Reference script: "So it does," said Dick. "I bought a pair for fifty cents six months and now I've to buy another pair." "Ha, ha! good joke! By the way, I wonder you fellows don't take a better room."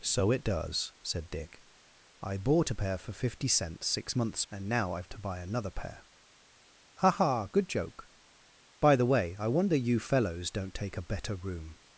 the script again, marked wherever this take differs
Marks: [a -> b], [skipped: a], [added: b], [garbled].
"So it does," said Dick. "I bought a pair for fifty cents six months and now I've to buy another pair." "Ha, ha! good joke! By the way, I wonder you fellows don't take a better room."